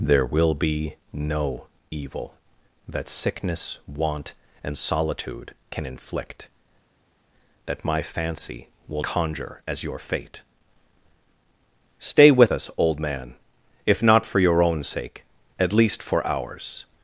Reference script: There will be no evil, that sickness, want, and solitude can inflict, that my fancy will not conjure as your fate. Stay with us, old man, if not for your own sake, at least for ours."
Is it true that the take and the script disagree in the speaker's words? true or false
true